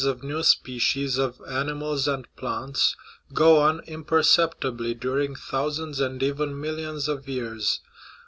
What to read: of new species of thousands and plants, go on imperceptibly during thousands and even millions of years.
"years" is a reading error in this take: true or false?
false